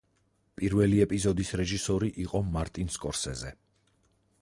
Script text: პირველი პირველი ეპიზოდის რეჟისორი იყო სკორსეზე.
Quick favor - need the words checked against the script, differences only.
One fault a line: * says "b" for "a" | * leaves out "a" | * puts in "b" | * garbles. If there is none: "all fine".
* leaves out "პირველი"
* puts in "მარტინ"